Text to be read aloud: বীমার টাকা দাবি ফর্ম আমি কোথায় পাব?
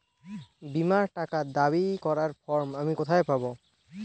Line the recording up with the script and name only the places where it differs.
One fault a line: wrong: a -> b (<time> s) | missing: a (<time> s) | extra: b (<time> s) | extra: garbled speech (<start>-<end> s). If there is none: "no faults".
extra: করার (2.0 s)